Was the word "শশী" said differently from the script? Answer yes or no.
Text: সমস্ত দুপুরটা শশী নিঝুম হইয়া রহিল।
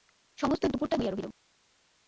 yes